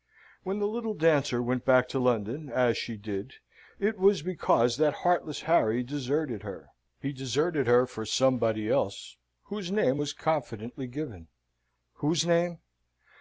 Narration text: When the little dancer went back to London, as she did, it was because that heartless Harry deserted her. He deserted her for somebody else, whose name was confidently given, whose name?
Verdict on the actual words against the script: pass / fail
pass